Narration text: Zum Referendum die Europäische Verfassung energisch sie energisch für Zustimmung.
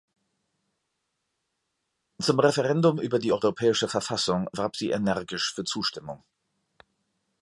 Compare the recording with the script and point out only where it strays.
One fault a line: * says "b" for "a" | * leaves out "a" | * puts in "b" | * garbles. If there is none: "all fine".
* puts in "über"
* says "warb" for "energisch"